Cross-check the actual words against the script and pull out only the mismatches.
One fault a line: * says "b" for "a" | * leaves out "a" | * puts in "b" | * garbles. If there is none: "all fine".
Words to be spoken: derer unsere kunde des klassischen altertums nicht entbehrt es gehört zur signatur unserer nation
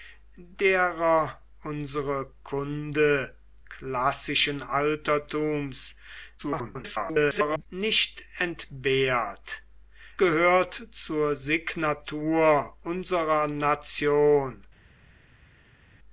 * leaves out "des"
* garbles
* leaves out "es"